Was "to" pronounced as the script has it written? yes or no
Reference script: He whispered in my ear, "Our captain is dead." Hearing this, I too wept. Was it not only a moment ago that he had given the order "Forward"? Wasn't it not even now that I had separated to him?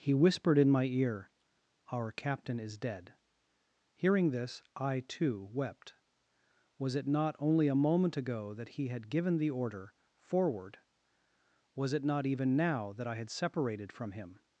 no